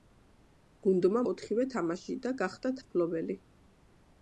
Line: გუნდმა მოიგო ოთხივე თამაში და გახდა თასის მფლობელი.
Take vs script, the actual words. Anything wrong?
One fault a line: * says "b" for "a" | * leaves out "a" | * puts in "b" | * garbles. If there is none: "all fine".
* leaves out "მოიგო"
* leaves out "თასის"